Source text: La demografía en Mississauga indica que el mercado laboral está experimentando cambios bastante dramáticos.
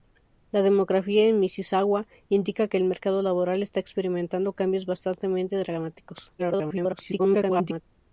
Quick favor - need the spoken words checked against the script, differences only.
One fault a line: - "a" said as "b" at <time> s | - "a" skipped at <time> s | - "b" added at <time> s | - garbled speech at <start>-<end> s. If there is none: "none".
- garbled speech at 6.4-7.8 s